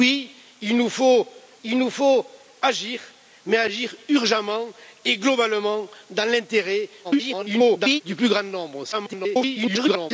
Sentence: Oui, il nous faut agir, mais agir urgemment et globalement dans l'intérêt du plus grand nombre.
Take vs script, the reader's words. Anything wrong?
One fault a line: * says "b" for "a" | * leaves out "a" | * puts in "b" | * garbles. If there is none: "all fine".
* puts in "il nous faut"
* garbles
* garbles